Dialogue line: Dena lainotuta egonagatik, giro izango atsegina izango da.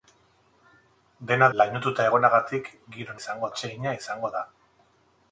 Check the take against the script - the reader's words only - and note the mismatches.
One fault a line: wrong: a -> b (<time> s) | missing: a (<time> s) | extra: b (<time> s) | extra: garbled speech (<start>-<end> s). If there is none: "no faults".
no faults